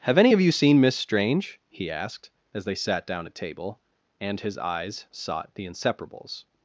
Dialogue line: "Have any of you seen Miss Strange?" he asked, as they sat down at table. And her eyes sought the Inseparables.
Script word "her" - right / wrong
wrong